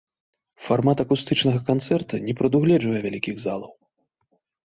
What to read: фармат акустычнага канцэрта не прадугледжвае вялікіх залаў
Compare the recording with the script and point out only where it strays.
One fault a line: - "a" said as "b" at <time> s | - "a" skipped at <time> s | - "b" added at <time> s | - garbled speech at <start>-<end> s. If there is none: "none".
none